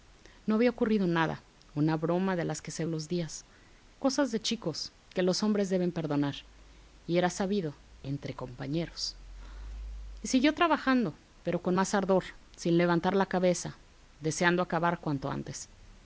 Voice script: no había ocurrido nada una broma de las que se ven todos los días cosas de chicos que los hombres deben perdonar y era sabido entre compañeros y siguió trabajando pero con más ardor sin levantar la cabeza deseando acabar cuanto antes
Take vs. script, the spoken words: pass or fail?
fail